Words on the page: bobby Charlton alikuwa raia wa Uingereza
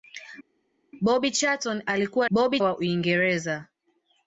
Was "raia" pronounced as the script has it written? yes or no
no